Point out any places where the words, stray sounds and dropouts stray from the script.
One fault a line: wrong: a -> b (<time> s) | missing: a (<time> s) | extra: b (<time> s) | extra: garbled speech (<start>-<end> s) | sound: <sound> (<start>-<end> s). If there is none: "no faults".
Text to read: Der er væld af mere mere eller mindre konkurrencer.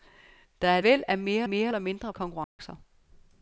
sound: dropout (2.4-2.6 s)